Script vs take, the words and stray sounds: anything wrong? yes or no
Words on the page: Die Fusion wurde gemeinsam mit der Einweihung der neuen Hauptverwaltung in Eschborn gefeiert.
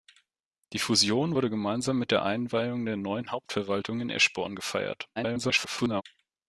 yes